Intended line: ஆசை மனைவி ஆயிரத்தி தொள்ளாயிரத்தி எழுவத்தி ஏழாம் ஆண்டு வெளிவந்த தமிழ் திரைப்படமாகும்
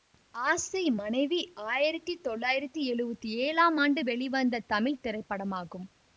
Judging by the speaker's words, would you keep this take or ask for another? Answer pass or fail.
pass